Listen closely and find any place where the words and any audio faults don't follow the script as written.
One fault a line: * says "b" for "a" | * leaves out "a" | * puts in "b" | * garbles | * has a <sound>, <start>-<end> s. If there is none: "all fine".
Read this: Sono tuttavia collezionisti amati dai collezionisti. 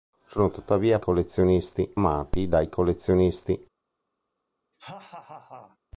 * has a laugh, 4.7-5.8 s